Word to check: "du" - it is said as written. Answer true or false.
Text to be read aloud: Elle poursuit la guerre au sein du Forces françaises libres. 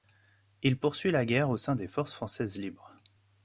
false